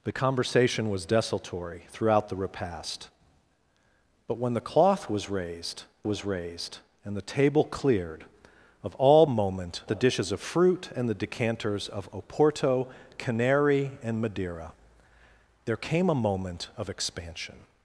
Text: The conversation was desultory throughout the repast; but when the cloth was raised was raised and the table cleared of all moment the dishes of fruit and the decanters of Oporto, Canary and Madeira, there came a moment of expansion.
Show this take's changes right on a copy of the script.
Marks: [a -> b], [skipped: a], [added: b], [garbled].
The conversation was desultory throughout the repast; but when the cloth was raised was raised and the table cleared of all moment the dishes of fruit and the decanters of Oporto, Canary and Madeira, there came a moment of expansion.